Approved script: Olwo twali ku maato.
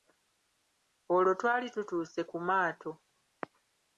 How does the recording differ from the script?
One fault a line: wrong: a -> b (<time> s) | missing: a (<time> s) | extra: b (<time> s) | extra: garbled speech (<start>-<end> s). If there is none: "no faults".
extra: tutuuse (1.7 s)